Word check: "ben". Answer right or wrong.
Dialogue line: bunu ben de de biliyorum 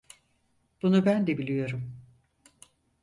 right